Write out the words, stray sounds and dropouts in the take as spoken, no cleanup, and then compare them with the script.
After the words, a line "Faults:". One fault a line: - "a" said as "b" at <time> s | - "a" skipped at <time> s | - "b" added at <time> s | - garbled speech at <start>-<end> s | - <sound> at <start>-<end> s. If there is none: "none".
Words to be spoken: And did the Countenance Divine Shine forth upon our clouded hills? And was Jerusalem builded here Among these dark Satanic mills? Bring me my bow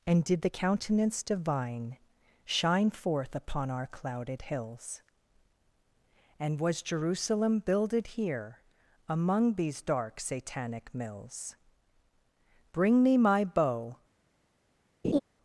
And did the Countenance Divine Shine forth upon our clouded hills? And was Jerusalem builded here Among these dark Satanic mills? Bring me my bow
Faults:
- laugh at 15.0-15.2 s